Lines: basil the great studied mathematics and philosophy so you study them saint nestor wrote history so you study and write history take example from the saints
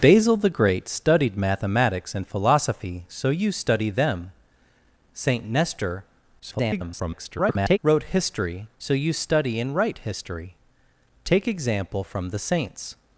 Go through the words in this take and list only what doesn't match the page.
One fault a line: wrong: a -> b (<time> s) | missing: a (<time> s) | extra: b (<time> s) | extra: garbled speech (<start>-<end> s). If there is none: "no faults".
extra: garbled speech (6.4-7.8 s)